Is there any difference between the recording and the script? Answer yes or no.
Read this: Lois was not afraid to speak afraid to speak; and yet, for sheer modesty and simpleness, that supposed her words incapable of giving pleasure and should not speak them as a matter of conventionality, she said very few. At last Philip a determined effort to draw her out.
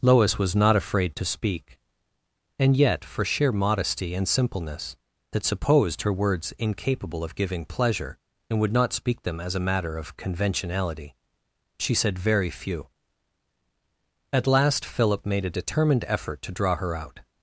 yes